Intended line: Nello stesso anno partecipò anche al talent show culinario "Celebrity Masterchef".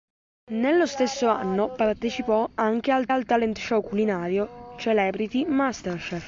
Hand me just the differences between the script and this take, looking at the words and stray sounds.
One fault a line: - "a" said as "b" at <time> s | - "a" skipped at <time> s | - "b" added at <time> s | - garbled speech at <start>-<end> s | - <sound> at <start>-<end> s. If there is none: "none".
- "al" added at 3.1 s